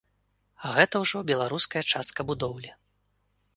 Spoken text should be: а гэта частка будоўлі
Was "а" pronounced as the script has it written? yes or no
yes